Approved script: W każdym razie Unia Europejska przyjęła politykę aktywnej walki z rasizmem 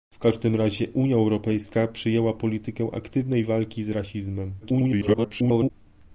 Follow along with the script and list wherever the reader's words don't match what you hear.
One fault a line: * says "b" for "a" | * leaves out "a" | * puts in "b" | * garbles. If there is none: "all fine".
* garbles